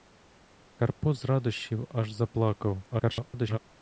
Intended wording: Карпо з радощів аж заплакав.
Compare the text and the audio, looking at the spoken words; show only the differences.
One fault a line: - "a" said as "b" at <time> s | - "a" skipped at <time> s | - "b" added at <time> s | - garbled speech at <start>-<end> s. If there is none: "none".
- garbled speech at 2.9-3.6 s